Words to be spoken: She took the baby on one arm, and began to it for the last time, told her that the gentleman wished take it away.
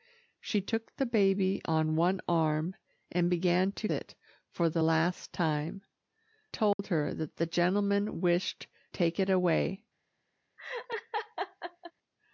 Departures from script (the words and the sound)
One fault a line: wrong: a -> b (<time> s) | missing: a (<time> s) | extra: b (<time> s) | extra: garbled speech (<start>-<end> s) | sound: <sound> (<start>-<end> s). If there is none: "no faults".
sound: dropout (6.7-6.8 s)
sound: laugh (10.6-11.9 s)